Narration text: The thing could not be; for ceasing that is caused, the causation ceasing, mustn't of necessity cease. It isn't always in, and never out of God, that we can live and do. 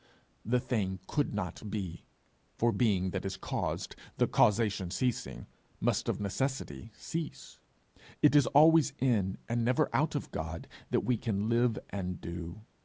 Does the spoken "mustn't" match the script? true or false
false